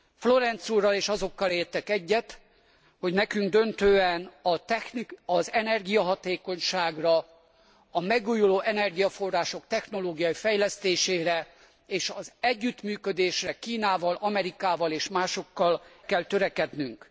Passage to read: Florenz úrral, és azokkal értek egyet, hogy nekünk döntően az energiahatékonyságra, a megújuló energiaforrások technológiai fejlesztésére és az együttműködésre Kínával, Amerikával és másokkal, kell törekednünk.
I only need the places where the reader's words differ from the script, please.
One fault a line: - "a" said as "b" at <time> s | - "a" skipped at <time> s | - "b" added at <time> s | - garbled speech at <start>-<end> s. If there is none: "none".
none